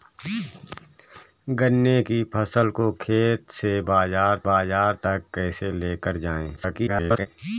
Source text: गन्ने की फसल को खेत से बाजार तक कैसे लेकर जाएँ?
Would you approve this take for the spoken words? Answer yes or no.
no